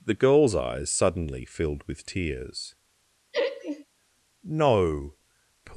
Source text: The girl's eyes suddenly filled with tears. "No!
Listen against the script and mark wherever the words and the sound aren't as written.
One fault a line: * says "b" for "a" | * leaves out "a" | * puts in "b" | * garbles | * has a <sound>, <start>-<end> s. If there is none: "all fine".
* has a laugh, 3.3-3.9 s